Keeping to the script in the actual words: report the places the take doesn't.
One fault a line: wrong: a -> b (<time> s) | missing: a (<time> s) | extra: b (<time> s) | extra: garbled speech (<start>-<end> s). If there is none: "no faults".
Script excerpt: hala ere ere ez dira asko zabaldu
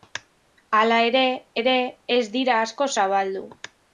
no faults